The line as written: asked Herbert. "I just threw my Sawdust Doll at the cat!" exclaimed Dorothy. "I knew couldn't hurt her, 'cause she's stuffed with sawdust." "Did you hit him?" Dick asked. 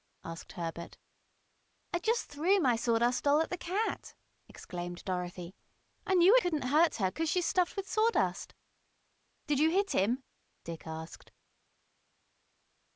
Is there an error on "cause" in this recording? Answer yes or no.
no